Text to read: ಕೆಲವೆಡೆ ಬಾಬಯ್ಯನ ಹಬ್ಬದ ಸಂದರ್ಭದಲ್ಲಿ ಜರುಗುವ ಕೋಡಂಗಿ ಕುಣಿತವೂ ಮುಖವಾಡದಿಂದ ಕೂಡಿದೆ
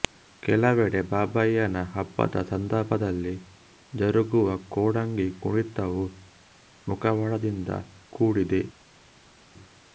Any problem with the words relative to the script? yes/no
no